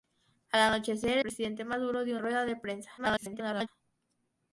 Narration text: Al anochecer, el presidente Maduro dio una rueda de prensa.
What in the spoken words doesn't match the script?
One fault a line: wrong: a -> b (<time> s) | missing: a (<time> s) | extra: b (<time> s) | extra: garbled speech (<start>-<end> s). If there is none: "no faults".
missing: el (1.2 s)
missing: una (2.2 s)
extra: garbled speech (3.0-3.7 s)